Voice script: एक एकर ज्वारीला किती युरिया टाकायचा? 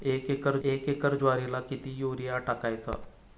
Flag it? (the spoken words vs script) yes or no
yes